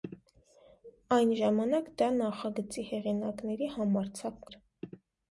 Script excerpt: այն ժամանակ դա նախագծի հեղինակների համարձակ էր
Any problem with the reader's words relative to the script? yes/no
no